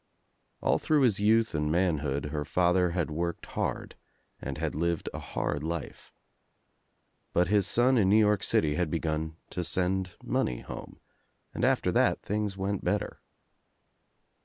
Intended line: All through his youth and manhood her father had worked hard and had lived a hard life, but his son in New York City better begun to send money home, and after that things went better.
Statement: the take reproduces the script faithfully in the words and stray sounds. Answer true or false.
false